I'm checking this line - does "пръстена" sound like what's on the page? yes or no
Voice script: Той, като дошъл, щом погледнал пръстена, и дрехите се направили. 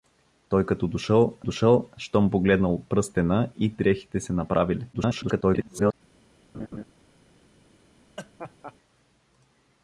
yes